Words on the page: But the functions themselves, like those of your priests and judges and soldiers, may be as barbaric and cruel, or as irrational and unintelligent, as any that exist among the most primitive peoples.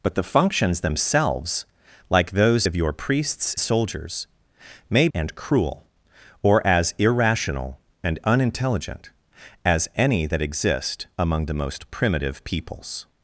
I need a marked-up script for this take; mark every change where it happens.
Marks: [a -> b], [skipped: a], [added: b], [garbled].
But the functions themselves, like those of your priests [skipped: and judges and] soldiers, may [skipped: be as barbaric] and cruel, or as irrational and unintelligent, as any that exist among the most primitive peoples.